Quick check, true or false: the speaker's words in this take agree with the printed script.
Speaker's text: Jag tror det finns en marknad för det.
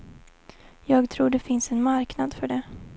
true